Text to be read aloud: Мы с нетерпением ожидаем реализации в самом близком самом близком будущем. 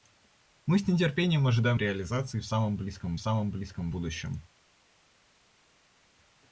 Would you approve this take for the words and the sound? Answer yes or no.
yes